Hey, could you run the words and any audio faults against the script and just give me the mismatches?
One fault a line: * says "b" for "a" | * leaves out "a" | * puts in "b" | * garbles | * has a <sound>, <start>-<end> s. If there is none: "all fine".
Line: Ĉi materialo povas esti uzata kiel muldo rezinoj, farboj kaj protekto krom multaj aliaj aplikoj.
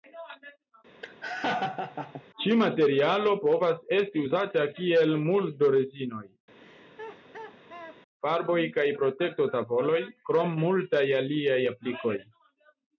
* has a laugh, 1.0-2.2 s
* has a laugh, 6.6-8.0 s
* puts in "tavoloj"